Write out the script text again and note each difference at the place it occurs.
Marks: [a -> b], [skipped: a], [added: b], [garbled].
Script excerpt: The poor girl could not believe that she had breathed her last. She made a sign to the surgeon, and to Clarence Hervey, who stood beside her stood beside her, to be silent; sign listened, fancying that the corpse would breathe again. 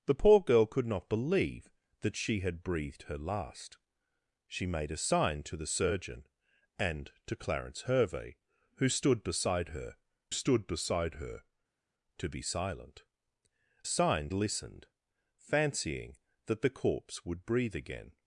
The poor girl could not believe that she had breathed her last. She made a sign to the surgeon, and to Clarence Hervey, who stood beside her stood beside her, to be silent; sign listened, fancying that the corpse would breathe again.